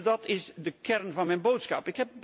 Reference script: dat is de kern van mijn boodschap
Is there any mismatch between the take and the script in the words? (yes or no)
no